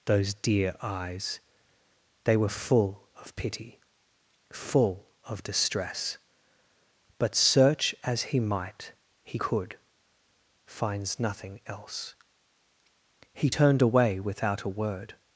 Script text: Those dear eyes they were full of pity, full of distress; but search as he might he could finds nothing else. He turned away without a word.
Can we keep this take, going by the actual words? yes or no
yes